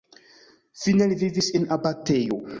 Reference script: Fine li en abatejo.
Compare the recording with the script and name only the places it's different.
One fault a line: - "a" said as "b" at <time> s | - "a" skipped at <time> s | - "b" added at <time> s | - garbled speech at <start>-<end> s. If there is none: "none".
- "vivis" added at 1.2 s